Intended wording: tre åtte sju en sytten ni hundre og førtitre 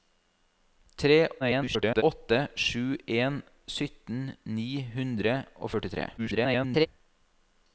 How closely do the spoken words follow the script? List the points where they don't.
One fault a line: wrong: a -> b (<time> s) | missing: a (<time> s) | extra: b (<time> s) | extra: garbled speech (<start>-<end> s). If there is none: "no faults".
extra: garbled speech (1.4-2.0 s)
extra: garbled speech (6.2-6.9 s)